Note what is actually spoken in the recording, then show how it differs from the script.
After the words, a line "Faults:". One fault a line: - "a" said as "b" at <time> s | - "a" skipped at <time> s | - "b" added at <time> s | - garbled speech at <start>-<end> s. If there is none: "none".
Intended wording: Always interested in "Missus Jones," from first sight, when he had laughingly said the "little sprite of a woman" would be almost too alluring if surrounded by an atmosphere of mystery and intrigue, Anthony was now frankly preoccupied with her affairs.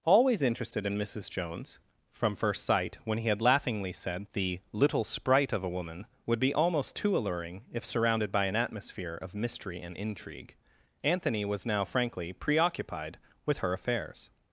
Always interested in "Missus Jones," from first sight, when he had laughingly said the "little sprite of a woman" would be almost too alluring if surrounded by an atmosphere of mystery and intrigue, Anthony was now frankly preoccupied with her affairs.
Faults:
none